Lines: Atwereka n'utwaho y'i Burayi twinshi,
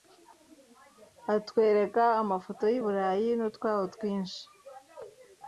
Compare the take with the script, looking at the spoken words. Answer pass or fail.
fail